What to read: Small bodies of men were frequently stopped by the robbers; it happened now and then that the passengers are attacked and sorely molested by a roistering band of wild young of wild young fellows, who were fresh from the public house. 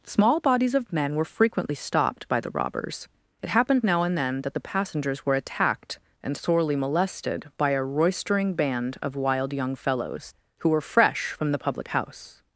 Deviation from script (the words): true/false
true